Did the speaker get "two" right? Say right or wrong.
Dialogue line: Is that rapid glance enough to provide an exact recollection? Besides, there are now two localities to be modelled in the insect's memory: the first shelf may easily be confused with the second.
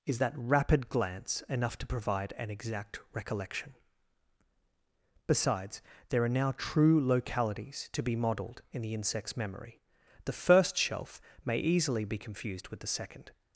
wrong